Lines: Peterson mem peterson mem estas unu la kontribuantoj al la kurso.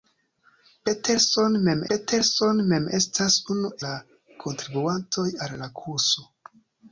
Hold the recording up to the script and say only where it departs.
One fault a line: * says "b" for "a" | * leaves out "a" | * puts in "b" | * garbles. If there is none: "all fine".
all fine